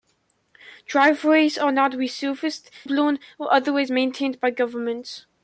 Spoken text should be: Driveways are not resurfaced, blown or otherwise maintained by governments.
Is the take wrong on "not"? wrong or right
right